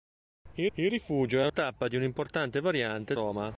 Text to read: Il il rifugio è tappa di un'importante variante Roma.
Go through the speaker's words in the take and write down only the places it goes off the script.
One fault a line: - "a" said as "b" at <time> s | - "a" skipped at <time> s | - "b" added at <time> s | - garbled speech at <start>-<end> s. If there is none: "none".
none